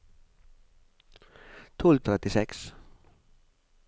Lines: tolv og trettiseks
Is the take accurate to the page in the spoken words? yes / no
yes